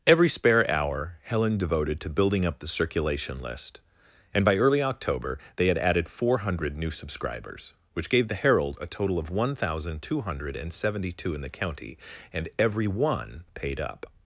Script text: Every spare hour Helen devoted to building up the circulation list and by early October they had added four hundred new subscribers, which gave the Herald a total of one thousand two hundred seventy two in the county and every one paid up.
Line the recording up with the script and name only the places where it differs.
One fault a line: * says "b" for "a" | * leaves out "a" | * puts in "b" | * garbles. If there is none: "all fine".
all fine